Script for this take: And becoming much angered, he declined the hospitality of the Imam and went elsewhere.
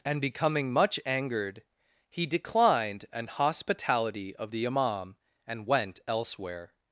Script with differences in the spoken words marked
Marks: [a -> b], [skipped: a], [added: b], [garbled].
And becoming much angered, he declined [the -> an] hospitality of the Imam and went elsewhere.